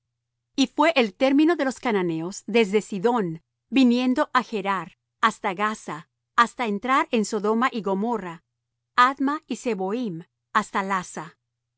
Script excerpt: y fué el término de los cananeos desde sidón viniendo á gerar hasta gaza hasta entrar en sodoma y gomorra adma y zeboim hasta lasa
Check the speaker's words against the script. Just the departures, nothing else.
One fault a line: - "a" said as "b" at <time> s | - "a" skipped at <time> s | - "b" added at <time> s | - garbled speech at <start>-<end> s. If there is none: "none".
none